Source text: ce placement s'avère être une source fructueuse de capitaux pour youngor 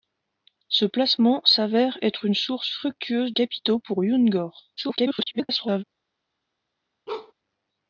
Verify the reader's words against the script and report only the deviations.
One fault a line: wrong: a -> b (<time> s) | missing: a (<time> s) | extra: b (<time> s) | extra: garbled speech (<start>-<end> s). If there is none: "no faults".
missing: de (3.3 s)
extra: garbled speech (4.8-5.8 s)